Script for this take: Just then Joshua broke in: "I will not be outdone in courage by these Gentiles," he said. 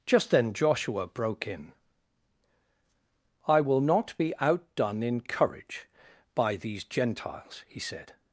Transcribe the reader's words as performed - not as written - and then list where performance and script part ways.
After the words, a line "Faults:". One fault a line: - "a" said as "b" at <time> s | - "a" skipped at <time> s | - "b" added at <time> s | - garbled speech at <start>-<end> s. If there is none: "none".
Just then Joshua broke in: "I will not be outdone in courage by these Gentiles," he said.
Faults:
none